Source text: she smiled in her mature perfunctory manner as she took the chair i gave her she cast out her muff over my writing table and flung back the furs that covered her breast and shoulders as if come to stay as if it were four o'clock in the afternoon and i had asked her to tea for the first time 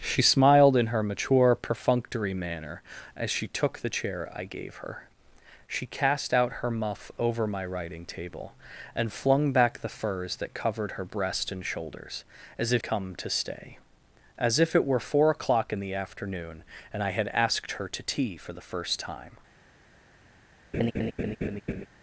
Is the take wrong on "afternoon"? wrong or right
right